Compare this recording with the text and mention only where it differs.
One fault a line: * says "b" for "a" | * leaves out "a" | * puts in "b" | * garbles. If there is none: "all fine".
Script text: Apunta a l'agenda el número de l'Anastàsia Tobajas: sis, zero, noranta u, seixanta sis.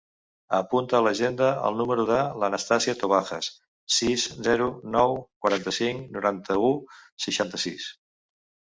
* puts in "nou quaranta cinc"